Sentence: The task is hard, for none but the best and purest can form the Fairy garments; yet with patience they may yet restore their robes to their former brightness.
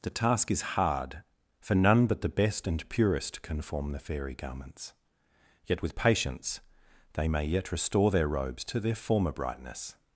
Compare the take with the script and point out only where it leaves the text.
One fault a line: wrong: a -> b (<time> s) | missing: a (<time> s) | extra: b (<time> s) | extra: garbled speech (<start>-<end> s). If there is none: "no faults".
no faults